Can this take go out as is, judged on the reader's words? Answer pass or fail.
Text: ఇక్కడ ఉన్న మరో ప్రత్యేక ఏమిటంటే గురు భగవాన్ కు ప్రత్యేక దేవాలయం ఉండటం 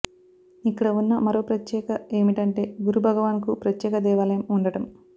pass